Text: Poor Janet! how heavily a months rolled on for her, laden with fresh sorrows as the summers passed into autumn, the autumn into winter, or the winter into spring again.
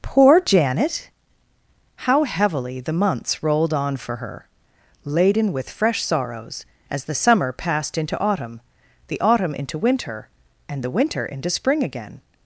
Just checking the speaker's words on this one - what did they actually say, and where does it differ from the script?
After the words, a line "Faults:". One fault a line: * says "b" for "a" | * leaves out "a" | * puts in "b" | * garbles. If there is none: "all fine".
Poor Janet! how heavily the months rolled on for her, laden with fresh sorrows as the summer passed into autumn, the autumn into winter, and the winter into spring again.
Faults:
* says "the" for "a"
* says "summer" for "summers"
* says "and" for "or"